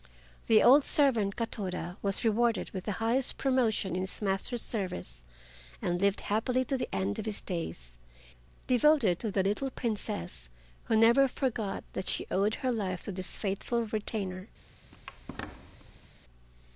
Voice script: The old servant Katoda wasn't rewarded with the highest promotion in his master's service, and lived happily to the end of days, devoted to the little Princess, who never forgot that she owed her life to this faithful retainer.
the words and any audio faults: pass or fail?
fail